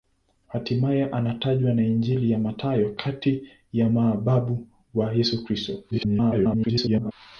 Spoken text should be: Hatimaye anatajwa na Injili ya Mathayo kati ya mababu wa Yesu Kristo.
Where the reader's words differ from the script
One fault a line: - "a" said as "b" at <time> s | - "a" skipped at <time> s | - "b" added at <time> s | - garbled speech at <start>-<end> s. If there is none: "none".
- garbled speech at 5.9-7.1 s